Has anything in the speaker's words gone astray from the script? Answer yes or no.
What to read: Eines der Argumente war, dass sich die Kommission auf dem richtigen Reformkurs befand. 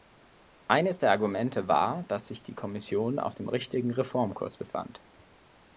no